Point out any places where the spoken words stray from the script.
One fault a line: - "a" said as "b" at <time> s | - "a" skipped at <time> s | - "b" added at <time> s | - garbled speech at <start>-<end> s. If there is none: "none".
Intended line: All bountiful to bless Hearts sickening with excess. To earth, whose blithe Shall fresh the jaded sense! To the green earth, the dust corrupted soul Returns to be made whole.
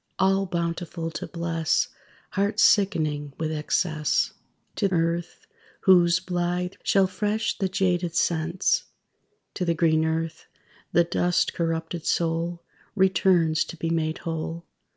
none